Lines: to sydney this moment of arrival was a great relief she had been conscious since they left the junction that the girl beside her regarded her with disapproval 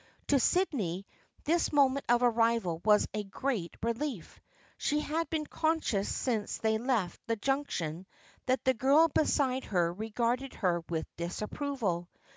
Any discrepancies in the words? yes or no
no